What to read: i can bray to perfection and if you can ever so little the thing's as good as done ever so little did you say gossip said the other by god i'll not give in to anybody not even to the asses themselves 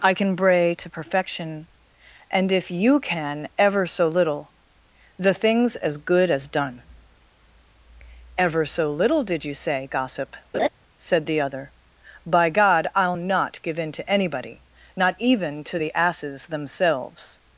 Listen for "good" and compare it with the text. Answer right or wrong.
right